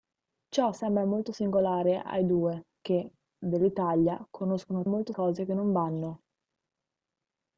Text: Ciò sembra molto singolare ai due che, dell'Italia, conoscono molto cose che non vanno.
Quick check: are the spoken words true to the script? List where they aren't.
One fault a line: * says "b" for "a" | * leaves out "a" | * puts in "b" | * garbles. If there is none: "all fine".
all fine